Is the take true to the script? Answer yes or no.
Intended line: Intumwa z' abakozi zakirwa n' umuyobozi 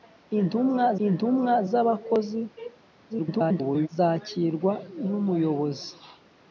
no